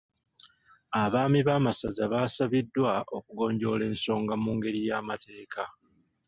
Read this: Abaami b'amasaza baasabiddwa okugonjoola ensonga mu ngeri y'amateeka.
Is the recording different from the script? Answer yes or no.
no